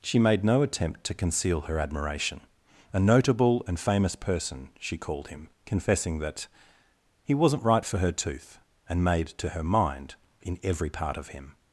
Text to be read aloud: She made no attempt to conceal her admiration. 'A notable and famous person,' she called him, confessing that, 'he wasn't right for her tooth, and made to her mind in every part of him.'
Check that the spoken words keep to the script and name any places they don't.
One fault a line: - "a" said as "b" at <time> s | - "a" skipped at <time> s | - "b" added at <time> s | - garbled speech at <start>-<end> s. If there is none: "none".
none